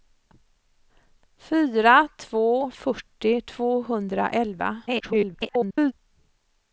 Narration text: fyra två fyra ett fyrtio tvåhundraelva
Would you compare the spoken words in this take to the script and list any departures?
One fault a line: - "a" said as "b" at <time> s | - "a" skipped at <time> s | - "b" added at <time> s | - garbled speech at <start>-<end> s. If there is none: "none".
- "fyra ett" skipped at 2.7 s
- garbled speech at 4.9-5.9 s